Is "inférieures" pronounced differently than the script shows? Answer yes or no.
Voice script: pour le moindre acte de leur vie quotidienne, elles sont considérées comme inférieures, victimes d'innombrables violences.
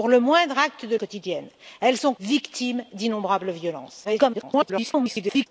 yes